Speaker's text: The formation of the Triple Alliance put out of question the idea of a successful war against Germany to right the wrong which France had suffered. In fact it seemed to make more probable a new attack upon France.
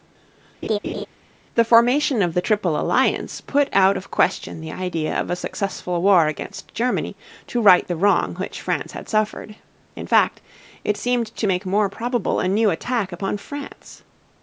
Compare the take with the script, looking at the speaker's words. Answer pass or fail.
pass